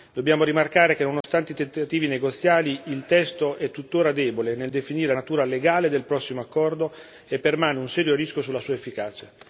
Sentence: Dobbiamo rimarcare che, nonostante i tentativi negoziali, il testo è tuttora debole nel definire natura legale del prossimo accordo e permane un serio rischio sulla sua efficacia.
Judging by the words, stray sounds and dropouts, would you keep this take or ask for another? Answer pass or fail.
fail